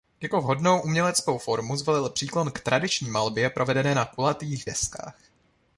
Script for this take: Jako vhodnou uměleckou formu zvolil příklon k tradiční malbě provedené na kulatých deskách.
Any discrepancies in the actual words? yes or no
no